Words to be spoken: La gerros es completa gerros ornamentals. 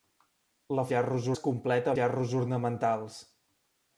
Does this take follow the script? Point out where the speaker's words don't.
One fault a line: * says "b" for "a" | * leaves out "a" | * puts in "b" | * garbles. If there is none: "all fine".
all fine